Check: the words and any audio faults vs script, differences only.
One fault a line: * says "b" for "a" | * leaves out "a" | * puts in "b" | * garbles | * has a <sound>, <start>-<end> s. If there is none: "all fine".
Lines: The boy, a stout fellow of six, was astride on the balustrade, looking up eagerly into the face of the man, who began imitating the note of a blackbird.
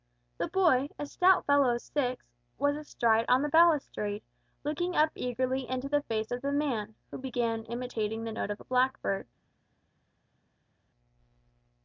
all fine